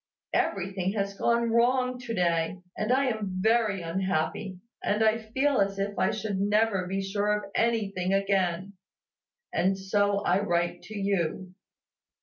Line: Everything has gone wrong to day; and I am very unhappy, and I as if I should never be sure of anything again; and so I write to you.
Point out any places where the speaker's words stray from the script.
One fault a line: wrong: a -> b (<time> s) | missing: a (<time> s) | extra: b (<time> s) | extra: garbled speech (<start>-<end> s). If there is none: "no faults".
extra: feel (5.2 s)